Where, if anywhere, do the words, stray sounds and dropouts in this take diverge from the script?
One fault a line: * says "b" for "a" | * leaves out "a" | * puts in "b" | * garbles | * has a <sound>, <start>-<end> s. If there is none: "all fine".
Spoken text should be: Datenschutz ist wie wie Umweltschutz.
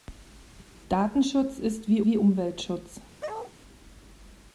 * has a bark, 3.2-3.5 s